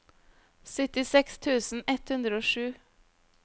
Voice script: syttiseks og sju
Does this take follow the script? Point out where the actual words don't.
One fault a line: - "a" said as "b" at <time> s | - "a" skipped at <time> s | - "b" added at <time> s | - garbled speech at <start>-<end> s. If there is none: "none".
- "tusen ett hundre" added at 1.4 s